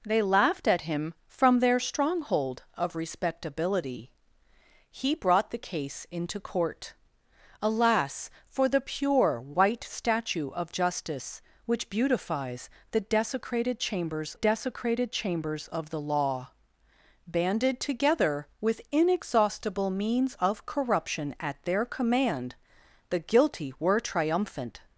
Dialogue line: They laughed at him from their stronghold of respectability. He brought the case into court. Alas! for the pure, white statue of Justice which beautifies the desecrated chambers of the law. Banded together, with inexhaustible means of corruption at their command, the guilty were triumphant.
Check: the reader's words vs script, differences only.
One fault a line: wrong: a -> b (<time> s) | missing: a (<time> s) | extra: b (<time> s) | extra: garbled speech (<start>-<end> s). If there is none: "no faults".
extra: desecrated chambers (14.3 s)